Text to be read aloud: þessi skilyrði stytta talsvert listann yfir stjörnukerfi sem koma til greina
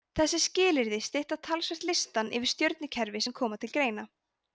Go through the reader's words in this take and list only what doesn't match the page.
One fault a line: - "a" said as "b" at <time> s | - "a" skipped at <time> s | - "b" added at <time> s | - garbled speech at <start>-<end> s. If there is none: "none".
none